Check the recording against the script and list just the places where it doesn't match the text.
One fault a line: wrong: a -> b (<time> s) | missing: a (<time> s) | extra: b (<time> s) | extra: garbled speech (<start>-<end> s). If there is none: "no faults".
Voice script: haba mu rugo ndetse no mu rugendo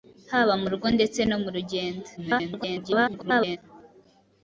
extra: garbled speech (2.2-3.6 s)